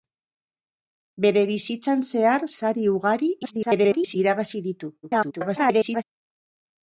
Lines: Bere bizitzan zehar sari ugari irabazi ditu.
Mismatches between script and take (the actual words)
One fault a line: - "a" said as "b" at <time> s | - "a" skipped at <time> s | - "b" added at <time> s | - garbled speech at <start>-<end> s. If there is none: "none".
- garbled speech at 3.4-4.2 s
- garbled speech at 5.0-6.0 s